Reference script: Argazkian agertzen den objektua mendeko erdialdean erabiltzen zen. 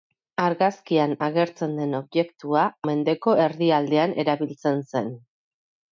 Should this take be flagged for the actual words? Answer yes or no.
no